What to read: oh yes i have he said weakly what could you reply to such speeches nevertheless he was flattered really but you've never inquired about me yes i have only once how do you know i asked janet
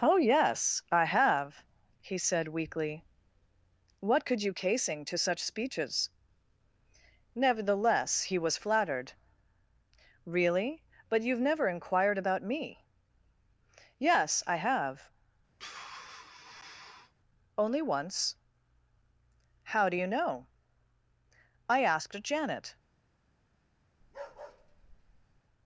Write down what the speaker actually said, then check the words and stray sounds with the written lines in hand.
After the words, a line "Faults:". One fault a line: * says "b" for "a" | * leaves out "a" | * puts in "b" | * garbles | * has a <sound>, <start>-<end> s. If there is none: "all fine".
oh yes i have he said weakly what could you casing to such speeches nevertheless he was flattered really but you've never inquired about me yes i have only once how do you know i asked janet
Faults:
* says "casing" for "reply"
* has a sigh, 15.6-17.1 s
* has a bark, 24.0-25.4 s